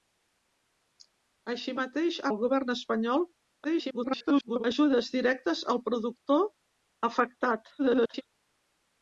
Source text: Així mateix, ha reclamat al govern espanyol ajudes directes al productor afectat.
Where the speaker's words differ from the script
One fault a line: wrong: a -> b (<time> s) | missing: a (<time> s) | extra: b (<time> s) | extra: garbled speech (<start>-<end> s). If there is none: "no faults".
missing: reclamat (2.3 s)
extra: garbled speech (3.6-4.6 s)
extra: garbled speech (7.8-8.2 s)